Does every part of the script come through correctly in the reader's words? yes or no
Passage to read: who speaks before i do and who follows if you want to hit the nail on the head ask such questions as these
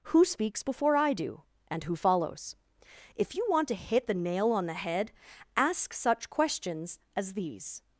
yes